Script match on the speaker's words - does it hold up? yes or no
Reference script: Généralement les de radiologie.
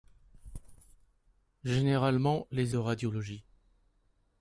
yes